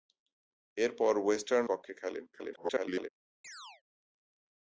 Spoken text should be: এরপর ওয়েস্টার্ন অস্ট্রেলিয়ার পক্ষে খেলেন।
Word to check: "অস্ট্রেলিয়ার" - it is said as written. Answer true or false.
false